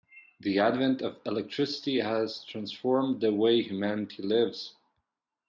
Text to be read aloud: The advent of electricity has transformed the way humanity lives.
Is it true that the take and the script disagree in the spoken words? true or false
false